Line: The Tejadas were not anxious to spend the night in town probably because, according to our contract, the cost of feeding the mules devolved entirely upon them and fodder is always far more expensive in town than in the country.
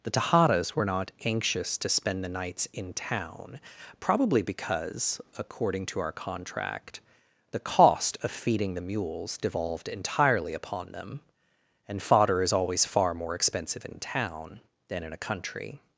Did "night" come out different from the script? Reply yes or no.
yes